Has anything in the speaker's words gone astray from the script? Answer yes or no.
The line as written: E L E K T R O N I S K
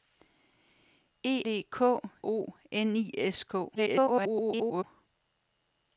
yes